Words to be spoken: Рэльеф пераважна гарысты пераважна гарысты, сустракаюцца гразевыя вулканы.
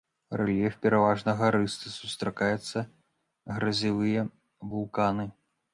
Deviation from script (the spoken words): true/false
true